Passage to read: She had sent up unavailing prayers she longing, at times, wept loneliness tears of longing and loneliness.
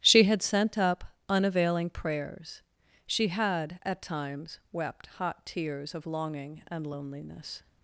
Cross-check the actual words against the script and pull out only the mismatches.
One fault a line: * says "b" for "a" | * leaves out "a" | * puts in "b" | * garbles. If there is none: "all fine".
* says "had" for "longing"
* says "hot" for "loneliness"